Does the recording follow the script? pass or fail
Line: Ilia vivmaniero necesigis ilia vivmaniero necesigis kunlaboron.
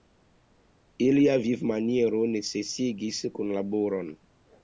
fail